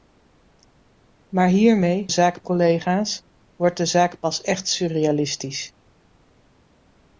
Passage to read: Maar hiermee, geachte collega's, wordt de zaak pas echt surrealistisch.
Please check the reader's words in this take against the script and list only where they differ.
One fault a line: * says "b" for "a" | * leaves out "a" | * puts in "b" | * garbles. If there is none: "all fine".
* says "zaak" for "geachte"